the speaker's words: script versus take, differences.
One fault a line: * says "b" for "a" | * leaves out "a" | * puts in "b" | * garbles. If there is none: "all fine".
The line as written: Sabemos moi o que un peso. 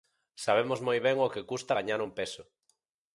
* puts in "ben"
* puts in "custa gañar"